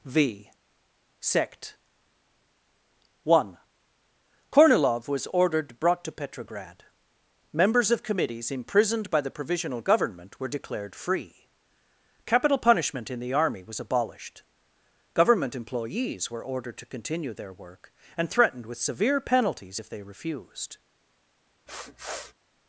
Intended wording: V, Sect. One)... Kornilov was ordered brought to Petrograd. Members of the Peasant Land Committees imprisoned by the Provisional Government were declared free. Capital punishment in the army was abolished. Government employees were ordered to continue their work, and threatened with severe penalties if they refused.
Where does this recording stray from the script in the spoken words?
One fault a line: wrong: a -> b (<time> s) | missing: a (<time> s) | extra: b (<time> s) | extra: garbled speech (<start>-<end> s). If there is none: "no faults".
missing: the Peasant Land (8.0 s)